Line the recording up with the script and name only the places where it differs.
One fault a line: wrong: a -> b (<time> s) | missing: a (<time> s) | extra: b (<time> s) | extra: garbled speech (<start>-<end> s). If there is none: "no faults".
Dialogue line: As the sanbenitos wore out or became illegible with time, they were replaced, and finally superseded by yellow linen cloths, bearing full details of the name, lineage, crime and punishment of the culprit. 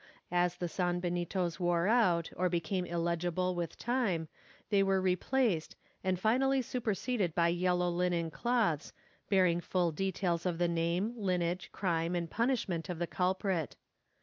no faults